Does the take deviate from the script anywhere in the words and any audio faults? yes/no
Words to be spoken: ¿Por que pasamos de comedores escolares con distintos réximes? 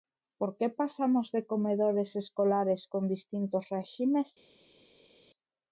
no